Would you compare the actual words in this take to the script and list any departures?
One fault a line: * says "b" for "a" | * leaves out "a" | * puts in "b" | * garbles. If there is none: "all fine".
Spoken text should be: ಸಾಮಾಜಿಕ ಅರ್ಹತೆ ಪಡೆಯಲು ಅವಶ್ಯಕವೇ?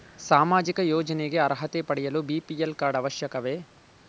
* puts in "ಯೋಜನೆಗೆ"
* puts in "ಬಿ.ಪಿ.ಎಲ್ ಕಾರ್ಡ್"